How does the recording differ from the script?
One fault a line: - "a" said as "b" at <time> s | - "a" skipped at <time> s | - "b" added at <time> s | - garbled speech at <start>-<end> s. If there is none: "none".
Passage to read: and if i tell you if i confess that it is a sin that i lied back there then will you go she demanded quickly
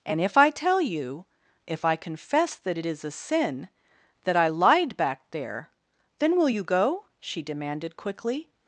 none